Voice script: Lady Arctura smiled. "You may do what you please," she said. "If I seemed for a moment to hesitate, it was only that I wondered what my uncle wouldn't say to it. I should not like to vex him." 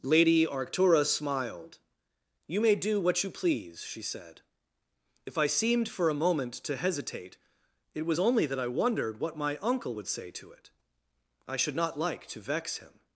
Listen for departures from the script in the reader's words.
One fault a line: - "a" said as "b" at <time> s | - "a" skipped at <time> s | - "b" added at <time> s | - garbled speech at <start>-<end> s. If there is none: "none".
- "wouldn't" said as "would" at 9.9 s